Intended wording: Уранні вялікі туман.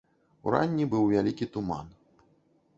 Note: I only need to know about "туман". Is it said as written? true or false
true